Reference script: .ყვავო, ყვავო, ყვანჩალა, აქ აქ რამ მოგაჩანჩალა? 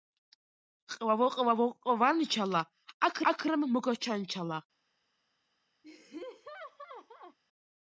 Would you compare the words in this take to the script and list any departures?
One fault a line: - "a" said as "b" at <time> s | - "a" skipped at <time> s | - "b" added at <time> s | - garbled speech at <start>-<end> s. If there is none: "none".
none